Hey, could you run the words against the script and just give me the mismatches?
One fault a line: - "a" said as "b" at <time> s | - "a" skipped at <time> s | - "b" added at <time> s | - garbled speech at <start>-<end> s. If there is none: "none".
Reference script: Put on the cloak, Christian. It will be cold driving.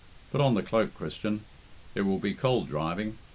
none